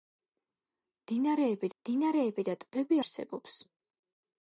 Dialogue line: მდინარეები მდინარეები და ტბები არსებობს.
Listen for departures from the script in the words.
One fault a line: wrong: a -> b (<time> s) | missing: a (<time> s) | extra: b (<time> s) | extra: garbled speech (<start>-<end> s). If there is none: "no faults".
no faults